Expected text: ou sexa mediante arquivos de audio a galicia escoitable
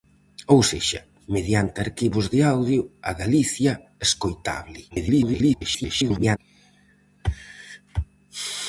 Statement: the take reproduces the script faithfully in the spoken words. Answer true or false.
false